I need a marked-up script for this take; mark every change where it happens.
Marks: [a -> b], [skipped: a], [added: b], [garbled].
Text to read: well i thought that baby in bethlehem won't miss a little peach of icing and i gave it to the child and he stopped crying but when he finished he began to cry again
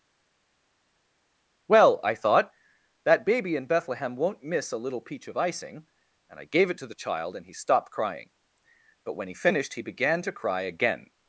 well i thought that baby in bethlehem won't miss a little peach of icing and i gave it to the child and he stopped crying but when he finished he began to cry again